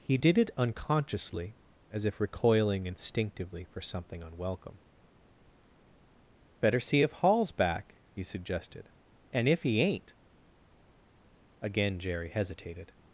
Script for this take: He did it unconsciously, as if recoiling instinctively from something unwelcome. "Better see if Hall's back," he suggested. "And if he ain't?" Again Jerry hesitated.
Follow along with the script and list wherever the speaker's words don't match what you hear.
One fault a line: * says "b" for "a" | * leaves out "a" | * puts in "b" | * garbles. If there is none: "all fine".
* says "for" for "from"